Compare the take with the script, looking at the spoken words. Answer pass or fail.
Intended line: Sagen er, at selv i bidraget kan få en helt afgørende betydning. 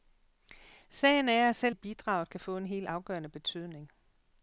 pass